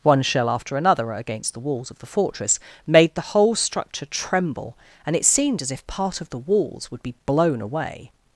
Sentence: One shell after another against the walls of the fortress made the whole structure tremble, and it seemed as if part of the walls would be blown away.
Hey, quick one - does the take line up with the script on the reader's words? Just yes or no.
yes